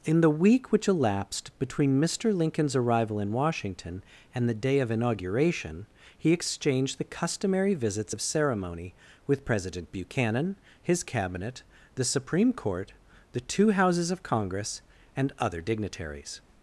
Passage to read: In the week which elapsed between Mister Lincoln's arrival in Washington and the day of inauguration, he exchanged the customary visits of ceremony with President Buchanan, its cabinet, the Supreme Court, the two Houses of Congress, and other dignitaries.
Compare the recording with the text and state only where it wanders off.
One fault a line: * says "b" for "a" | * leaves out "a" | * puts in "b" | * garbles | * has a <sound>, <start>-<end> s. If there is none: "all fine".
* says "his" for "its"